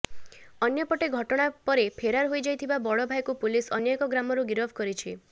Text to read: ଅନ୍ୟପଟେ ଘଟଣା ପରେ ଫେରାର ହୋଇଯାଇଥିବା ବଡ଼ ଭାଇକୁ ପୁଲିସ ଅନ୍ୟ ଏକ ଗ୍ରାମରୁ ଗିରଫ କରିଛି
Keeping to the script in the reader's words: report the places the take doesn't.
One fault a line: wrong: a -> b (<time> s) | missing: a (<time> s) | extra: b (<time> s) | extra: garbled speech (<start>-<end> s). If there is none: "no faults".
no faults